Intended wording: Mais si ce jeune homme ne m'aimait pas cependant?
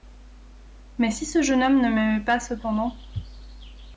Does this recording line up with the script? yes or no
yes